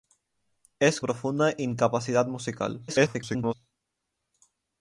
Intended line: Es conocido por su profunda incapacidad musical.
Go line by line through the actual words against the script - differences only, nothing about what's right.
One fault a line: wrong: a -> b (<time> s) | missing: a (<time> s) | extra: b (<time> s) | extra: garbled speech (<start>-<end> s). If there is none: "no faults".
missing: conocido por su (1.0 s)
extra: garbled speech (2.9-3.5 s)